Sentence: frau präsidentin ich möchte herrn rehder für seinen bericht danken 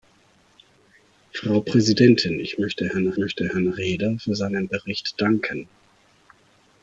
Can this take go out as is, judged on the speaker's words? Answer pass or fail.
fail